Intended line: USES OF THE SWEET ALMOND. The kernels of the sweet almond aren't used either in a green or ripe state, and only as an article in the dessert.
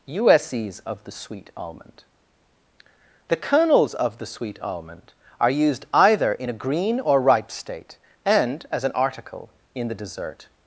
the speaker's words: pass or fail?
fail